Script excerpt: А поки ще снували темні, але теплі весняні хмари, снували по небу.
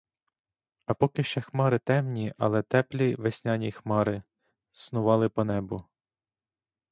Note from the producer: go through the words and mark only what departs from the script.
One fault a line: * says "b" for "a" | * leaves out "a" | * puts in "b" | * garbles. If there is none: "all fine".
* says "хмари" for "снували"